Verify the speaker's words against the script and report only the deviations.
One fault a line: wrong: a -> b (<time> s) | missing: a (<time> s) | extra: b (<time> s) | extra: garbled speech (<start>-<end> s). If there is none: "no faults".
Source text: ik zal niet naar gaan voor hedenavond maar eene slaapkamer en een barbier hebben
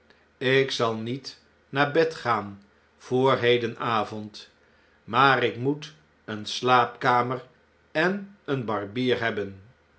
extra: bed (1.9 s)
extra: ik moet (5.4 s)